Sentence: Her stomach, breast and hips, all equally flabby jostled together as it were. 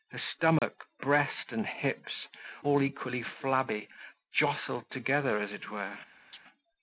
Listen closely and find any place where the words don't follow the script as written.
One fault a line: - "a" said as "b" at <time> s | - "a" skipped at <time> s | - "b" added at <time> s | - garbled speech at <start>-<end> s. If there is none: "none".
none